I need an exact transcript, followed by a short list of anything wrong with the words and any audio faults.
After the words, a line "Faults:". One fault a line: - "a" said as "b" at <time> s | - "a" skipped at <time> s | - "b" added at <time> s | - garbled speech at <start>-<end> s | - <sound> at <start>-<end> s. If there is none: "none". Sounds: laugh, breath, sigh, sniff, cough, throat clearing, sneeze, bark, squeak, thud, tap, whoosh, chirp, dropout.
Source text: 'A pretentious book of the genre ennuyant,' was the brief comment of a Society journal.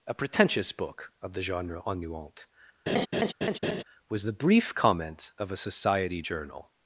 'A pretentious book of the genre ennuyant,' was the brief comment of a Society journal.
Faults:
- laugh at 2.9-3.8 s